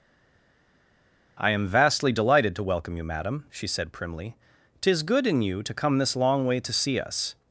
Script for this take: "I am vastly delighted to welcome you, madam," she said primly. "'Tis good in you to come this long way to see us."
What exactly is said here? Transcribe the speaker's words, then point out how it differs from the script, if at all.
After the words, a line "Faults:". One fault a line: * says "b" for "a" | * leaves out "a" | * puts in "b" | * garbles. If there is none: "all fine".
"I am vastly delighted to welcome you, madam," she said primly. "'Tis good in you to come this long way to see us."
Faults:
all fine